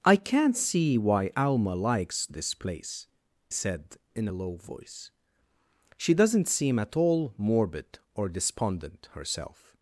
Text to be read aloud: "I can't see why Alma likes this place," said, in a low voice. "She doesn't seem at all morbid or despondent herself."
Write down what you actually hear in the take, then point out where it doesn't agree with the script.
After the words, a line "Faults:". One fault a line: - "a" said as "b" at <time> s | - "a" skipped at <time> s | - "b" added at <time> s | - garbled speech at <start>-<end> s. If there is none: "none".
"I can't see why Alma likes this place," said, in a low voice. "She doesn't seem at all morbid or despondent herself."
Faults:
none